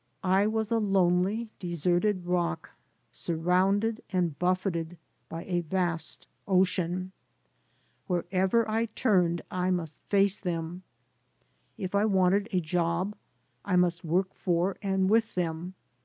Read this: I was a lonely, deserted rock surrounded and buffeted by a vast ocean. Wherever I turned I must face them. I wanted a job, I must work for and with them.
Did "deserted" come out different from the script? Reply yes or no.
no